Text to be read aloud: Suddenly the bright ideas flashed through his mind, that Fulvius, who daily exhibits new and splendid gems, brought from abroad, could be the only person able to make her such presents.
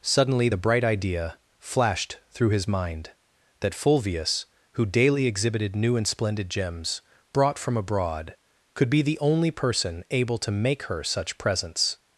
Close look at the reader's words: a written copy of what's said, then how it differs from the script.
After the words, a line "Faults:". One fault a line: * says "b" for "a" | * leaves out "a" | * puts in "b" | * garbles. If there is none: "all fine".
Suddenly the bright idea flashed through his mind, that Fulvius, who daily exhibited new and splendid gems, brought from abroad, could be the only person able to make her such presents.
Faults:
* says "idea" for "ideas"
* says "exhibited" for "exhibits"